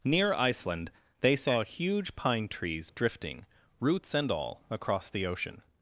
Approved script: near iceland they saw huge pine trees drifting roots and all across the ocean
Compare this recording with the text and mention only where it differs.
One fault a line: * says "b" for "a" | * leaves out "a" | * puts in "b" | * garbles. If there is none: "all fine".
all fine